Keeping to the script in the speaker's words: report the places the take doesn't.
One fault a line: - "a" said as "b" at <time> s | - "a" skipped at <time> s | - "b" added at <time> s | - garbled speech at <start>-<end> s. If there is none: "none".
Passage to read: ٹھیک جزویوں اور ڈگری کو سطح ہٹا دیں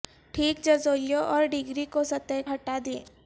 none